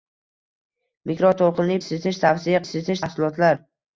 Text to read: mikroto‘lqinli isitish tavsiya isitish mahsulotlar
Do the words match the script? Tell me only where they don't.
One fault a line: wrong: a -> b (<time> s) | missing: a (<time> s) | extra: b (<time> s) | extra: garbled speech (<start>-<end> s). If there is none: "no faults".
no faults